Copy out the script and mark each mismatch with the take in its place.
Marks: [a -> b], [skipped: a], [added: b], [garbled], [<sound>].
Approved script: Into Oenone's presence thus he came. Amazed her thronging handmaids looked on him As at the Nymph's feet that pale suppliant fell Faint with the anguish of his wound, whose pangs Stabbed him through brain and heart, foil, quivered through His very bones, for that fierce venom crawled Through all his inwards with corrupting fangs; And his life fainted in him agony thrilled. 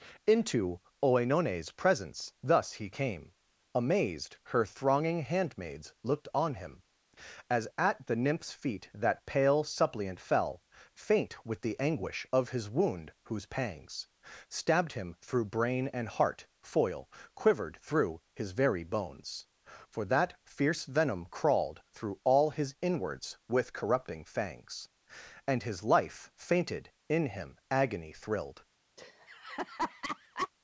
Into Oenone's presence thus he came. Amazed her thronging handmaids looked on him As at the Nymph's feet that pale suppliant fell Faint with the anguish of his wound, whose pangs Stabbed him through brain and heart, foil, quivered through His very bones, for that fierce venom crawled Through all his inwards with corrupting fangs; And his life fainted in him agony thrilled. [laugh]